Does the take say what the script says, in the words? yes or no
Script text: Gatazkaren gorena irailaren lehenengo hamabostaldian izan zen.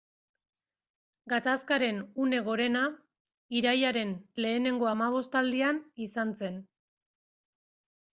no